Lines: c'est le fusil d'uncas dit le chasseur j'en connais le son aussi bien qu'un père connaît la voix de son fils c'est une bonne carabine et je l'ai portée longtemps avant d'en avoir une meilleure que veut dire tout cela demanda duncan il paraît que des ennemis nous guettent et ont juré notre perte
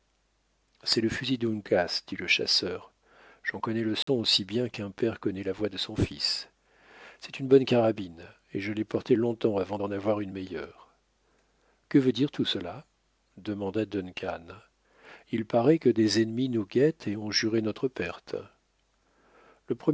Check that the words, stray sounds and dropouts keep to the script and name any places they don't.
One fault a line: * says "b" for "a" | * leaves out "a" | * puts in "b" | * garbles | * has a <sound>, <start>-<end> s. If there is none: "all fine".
* has a dropout, 4.0-4.1 s